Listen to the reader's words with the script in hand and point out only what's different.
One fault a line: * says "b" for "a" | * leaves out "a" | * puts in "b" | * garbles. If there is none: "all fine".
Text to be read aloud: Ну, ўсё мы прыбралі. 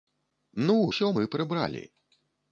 all fine